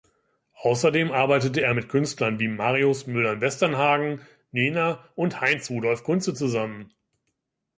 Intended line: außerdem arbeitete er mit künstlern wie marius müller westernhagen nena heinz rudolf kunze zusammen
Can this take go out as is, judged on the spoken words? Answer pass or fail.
fail